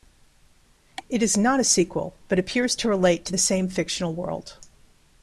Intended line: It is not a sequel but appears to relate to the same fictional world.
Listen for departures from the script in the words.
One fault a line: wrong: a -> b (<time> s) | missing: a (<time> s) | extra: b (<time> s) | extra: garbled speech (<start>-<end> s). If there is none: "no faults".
no faults